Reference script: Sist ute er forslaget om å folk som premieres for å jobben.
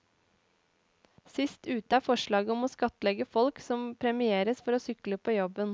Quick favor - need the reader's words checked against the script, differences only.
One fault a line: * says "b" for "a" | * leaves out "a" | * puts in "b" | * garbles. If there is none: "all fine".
* puts in "skattlegge"
* puts in "sykle på"